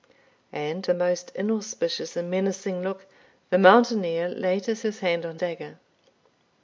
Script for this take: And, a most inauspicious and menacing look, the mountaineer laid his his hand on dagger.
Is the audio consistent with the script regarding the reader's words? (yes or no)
yes